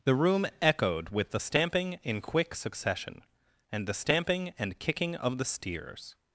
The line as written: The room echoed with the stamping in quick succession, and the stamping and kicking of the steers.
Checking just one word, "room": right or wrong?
right